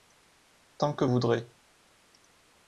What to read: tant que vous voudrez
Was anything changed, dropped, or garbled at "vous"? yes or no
yes